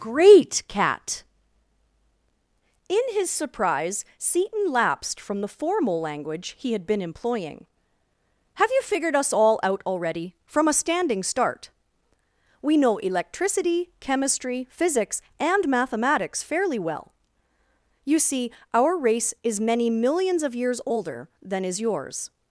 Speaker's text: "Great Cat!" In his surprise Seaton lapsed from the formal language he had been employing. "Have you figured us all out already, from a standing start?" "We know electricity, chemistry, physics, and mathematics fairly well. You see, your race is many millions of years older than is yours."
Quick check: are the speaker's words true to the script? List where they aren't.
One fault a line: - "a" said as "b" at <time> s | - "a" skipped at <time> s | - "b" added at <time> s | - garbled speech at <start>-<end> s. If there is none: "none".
- "your" said as "our" at 18.7 s